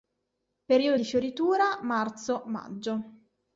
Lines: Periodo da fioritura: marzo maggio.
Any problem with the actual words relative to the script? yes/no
yes